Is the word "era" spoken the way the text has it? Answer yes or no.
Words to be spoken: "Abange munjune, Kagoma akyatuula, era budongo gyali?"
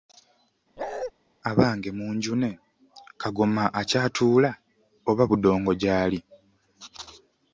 no